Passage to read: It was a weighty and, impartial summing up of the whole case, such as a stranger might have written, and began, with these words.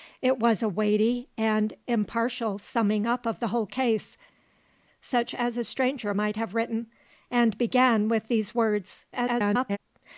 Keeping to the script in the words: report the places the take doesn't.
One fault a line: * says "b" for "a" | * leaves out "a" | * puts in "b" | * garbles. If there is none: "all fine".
* garbles